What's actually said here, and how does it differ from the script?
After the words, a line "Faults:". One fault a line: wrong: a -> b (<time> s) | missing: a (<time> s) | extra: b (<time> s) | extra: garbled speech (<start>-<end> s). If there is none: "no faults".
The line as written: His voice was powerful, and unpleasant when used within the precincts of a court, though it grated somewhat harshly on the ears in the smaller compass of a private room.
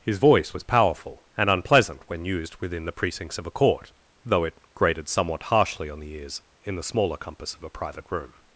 His voice was powerful, and unpleasant when used within the precincts of a court, though it grated somewhat harshly on the ears in the smaller compass of a private room.
Faults:
no faults